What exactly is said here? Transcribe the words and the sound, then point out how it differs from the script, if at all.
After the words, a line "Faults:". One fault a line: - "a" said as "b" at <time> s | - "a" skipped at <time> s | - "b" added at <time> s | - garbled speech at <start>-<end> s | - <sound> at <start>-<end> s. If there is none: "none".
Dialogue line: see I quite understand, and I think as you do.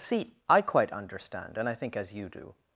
see I quite understand, and I think as you do.
Faults:
none